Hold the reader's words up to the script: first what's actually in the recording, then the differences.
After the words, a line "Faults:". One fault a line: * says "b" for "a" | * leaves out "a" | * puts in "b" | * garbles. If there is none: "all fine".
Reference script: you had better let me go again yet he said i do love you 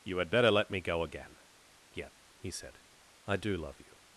you had better let me go again yet he said i do love you
Faults:
all fine